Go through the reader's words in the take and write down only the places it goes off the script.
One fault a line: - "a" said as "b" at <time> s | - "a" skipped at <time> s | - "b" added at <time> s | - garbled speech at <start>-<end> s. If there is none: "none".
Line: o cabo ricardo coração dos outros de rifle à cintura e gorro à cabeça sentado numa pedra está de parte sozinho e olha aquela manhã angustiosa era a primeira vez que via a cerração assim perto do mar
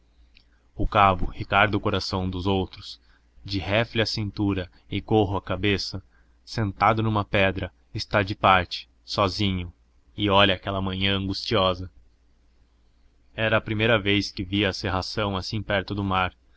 none